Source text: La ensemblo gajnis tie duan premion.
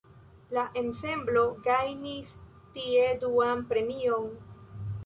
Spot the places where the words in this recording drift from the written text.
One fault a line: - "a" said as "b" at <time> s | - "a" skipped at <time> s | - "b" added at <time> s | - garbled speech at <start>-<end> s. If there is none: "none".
none